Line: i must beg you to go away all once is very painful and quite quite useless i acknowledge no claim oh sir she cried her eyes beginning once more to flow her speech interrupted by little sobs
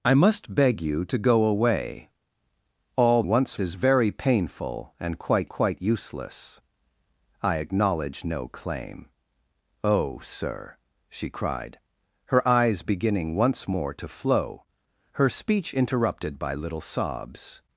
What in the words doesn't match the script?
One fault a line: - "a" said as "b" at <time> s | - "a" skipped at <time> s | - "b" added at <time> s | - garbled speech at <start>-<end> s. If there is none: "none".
none